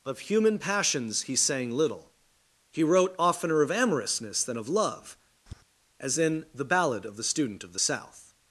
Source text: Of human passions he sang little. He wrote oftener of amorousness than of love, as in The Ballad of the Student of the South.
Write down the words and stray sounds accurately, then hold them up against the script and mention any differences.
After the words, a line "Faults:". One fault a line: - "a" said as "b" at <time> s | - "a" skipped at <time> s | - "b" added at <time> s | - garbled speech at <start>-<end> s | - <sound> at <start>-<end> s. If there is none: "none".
Of human passions he sang little. He wrote oftener of amorousness than of love, as in The Ballad of the Student of the South.
Faults:
- tap at 5.5-5.6 s